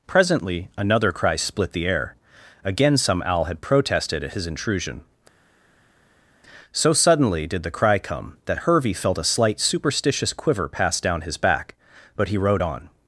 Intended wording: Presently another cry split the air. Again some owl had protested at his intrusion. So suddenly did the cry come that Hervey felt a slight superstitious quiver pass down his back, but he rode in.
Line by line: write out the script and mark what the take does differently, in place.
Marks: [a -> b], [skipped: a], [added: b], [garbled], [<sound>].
Presently another cry split the air. Again some owl had protested at his intrusion. So suddenly did the cry come that Hervey felt a slight superstitious quiver pass down his back, but he rode [in. -> on]